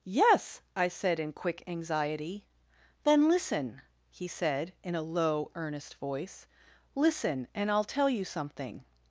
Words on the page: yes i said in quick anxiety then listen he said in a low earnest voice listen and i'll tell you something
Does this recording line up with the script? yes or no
yes